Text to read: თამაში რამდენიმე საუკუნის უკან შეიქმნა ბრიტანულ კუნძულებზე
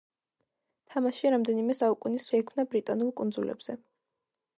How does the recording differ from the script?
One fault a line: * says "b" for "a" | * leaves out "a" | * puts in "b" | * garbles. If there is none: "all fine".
* leaves out "უკან"